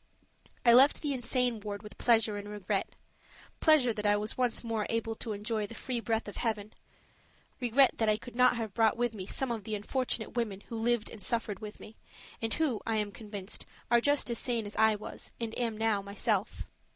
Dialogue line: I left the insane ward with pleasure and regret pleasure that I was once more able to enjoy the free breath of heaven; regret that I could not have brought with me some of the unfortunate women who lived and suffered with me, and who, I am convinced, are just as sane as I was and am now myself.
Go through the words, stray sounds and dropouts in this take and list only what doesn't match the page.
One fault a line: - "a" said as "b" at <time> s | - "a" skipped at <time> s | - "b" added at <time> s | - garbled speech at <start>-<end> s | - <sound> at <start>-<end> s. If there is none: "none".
none